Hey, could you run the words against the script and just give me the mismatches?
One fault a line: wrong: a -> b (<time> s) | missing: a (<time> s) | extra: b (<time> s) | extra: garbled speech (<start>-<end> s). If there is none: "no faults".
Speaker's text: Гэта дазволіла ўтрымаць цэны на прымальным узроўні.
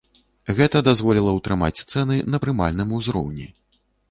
no faults